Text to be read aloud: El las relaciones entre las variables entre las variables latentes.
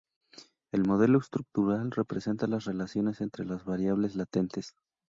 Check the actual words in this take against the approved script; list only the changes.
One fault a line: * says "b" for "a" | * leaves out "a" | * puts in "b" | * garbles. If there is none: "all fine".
* says "modelo estructural representa" for "las relaciones entre"
* says "relaciones" for "variables"